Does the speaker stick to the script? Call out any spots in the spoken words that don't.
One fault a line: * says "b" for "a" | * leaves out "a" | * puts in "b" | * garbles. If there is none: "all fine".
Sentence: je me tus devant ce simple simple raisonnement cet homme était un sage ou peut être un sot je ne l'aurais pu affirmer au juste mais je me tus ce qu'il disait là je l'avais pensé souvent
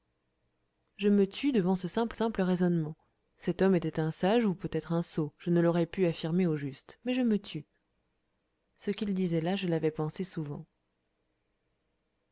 all fine